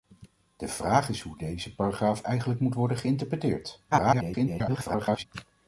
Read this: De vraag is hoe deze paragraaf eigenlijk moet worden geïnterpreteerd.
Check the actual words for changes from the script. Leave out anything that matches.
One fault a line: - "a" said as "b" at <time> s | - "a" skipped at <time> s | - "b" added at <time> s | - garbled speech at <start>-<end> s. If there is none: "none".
- garbled speech at 3.9-5.2 s